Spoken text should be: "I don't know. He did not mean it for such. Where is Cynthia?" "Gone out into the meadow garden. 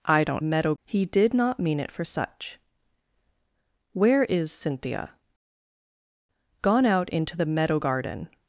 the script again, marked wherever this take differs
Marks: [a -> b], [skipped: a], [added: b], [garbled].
"I don't [know. -> meadow] He did not mean it for such. Where is Cynthia?" "Gone out into the meadow garden.